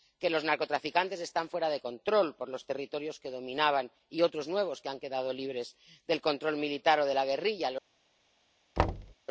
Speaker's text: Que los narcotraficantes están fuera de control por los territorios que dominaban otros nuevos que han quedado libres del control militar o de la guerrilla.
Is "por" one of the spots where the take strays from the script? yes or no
no